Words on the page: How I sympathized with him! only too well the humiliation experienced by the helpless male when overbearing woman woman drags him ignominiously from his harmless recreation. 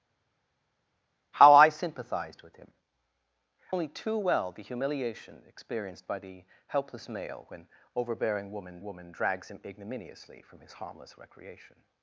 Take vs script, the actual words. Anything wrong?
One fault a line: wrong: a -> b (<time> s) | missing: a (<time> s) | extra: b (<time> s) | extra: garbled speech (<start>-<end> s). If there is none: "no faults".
no faults